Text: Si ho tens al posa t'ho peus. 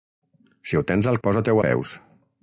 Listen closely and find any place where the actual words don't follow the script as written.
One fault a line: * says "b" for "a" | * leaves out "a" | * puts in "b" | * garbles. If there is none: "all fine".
all fine